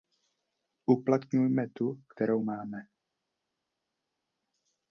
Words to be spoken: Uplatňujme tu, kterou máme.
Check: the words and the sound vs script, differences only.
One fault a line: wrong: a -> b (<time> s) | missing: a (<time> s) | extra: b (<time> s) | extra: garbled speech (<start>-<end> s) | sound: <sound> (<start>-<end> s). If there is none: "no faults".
no faults